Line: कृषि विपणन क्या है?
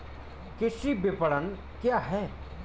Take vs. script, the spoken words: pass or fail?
pass